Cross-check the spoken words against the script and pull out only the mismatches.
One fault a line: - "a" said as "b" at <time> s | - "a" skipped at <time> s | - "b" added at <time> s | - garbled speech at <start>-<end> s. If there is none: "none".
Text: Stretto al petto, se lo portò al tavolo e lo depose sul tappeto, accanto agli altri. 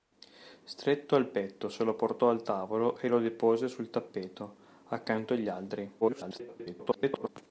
- garbled speech at 6.0-7.3 s